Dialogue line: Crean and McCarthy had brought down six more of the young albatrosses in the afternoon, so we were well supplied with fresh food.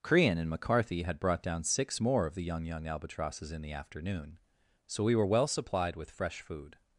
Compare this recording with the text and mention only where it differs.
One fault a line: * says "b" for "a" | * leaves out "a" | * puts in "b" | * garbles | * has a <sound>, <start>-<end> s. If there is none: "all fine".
* puts in "young"